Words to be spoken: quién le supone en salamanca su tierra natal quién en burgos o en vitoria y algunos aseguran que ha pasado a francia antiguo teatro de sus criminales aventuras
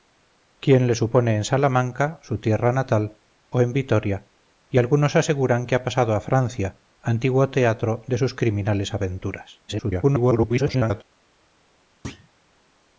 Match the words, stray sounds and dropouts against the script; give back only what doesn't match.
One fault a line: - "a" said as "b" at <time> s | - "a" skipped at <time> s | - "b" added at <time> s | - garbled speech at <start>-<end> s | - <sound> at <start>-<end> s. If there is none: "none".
- "quién en burgos" skipped at 3.2 s
- garbled speech at 9.7-11.0 s
- thud at 12.0-12.3 s